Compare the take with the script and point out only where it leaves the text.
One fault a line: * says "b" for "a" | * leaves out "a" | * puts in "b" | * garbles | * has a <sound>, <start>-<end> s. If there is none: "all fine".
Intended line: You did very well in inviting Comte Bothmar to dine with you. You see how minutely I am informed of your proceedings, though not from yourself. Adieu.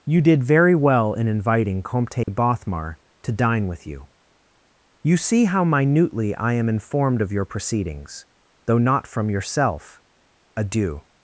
* has a dropout, 2.2-2.3 s